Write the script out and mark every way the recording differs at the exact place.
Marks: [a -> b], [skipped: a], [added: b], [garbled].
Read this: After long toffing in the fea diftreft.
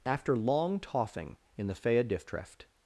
After long toffing in the fea diftreft.